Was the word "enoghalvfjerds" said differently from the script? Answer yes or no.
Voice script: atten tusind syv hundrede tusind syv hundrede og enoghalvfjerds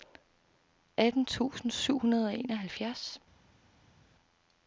no